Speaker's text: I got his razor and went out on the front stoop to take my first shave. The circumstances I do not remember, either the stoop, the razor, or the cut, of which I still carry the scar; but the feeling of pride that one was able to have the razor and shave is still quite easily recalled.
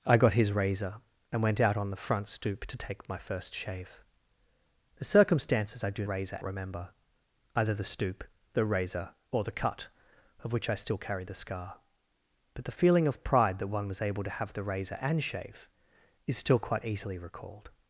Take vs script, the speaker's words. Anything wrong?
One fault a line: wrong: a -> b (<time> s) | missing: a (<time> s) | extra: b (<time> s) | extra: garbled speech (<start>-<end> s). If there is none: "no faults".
wrong: not -> razor (6.1 s)